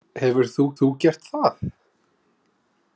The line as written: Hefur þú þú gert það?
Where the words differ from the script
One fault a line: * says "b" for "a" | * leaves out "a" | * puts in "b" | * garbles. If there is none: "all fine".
all fine